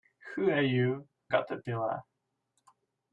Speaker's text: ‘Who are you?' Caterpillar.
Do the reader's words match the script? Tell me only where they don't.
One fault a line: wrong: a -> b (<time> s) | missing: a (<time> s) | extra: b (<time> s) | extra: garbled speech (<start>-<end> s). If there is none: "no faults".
no faults